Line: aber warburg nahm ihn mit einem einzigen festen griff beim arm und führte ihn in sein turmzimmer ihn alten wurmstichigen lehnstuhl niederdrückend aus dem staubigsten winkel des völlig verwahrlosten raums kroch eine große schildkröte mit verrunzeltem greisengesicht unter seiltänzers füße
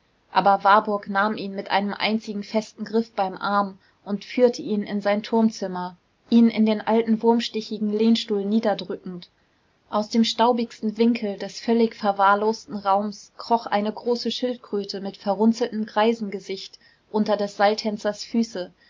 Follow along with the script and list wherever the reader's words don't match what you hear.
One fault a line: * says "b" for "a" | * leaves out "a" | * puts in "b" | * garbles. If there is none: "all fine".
* puts in "in den"
* puts in "des"